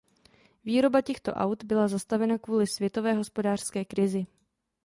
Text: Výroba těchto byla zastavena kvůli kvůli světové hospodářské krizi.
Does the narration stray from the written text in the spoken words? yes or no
yes